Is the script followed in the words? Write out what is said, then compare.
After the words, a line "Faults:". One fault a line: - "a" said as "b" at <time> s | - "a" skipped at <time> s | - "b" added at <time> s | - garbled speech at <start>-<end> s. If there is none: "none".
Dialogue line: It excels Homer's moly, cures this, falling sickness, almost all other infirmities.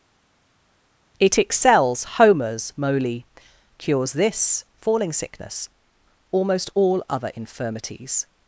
It excels Homer's moly, cures this, falling sickness, almost all other infirmities.
Faults:
none